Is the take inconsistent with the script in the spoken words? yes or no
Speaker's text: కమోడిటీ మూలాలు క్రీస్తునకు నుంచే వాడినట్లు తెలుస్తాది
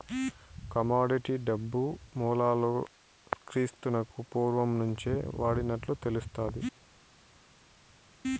yes